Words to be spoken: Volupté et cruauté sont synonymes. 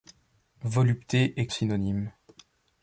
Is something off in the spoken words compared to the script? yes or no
yes